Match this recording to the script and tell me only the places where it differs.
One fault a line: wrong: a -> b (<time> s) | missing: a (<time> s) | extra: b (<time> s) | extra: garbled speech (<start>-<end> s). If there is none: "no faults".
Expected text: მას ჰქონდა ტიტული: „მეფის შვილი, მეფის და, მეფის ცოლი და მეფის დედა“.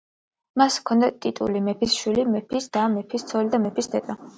no faults